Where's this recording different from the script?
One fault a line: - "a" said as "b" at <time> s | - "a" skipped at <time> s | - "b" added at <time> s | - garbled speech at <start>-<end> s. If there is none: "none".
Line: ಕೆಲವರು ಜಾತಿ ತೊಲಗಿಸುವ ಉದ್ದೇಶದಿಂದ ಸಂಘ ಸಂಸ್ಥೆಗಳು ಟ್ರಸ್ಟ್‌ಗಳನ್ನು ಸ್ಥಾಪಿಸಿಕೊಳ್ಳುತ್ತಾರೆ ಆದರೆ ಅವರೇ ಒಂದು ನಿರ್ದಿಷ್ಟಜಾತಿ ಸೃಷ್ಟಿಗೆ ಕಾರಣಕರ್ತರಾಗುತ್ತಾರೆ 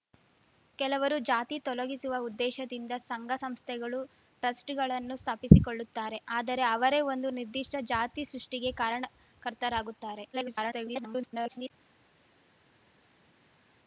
- garbled speech at 10.3-11.7 s